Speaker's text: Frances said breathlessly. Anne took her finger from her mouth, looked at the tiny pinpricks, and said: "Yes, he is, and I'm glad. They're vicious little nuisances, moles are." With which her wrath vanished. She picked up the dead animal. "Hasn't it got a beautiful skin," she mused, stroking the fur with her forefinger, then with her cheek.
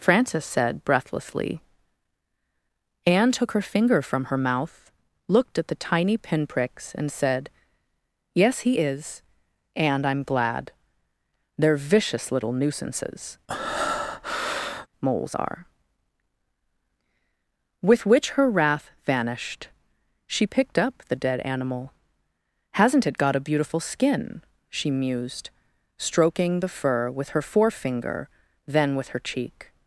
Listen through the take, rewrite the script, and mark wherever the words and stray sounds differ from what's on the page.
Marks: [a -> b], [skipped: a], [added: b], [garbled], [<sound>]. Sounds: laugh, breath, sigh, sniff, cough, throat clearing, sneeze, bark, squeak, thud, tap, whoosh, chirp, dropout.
Frances said breathlessly. Anne took her finger from her mouth, looked at the tiny pinpricks, and said: "Yes, he is, and I'm glad. They're vicious little nuisances, [breath] moles are." With which her wrath vanished. She picked up the dead animal. "Hasn't it got a beautiful skin," she mused, stroking the fur with her forefinger, then with her cheek.